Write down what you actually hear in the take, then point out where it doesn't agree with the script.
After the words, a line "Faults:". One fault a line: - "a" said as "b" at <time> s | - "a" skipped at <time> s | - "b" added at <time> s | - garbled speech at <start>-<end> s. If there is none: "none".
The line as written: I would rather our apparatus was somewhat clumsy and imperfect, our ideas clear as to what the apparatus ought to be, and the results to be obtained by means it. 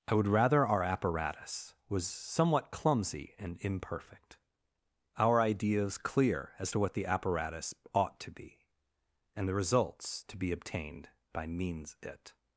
I would rather our apparatus was somewhat clumsy and imperfect, our ideas clear as to what the apparatus ought to be, and the results to be obtained by means it.
Faults:
none